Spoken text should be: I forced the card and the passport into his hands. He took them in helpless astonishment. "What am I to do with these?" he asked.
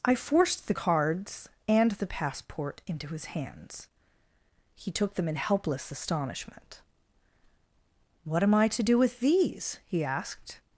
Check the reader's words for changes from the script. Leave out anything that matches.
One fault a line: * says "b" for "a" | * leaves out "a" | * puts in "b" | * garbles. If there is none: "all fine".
* says "cards" for "card"